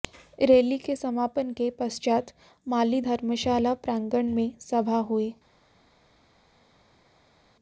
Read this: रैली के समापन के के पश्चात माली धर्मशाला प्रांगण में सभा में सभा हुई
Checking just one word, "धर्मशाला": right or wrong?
right